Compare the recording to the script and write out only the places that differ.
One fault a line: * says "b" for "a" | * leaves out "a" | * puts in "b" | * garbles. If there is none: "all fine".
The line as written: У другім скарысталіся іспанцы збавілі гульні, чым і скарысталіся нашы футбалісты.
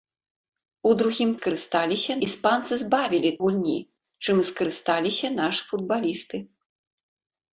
all fine